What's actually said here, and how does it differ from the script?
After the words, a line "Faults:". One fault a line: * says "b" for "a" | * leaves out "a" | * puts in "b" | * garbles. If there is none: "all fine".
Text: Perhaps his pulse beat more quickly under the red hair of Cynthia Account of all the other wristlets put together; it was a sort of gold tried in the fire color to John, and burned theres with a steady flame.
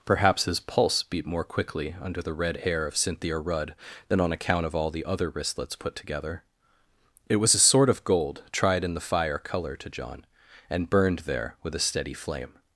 Perhaps his pulse beat more quickly under the red hair of Cynthia Rudd than on account of all the other wristlets put together; it was a sort of gold tried in the fire color to John, and burned there with a steady flame.
Faults:
* puts in "Rudd than on"
* says "there" for "theres"